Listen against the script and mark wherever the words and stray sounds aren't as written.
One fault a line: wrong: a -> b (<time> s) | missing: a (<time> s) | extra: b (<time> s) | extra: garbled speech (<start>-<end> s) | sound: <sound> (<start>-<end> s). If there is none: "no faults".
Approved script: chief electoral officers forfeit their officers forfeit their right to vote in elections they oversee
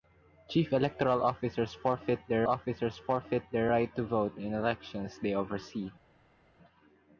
no faults